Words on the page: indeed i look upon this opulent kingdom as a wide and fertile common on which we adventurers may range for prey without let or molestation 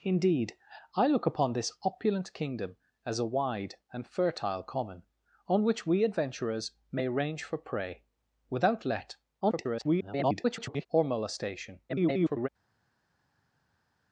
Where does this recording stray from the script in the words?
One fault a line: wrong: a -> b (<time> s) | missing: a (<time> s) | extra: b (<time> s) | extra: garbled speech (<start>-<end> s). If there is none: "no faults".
extra: garbled speech (9.4-10.9 s)
extra: garbled speech (11.9-12.5 s)